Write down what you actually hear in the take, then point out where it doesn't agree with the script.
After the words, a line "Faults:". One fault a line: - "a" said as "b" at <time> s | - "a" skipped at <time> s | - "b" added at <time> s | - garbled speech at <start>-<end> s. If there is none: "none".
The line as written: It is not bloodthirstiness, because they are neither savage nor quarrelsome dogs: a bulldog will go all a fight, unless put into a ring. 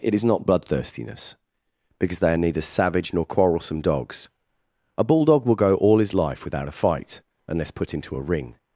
It is not bloodthirstiness, because they are neither savage nor quarrelsome dogs: a bulldog will go all his life without a fight, unless put into a ring.
Faults:
- "his life without" added at 6.0 s